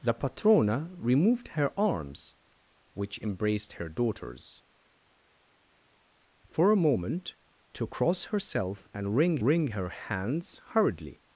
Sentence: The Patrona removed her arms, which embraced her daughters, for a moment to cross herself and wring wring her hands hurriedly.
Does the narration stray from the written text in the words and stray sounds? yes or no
no